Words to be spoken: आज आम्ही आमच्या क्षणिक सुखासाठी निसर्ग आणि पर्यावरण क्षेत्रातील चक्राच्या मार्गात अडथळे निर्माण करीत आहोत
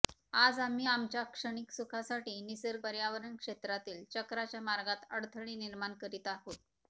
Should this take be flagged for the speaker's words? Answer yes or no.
yes